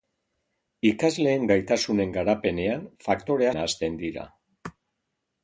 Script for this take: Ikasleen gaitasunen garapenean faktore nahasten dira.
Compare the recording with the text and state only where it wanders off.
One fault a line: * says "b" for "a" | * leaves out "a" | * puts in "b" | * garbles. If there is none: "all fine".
all fine